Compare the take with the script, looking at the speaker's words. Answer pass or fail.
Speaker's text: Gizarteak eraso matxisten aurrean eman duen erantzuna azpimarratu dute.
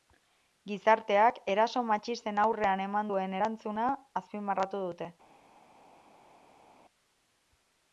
pass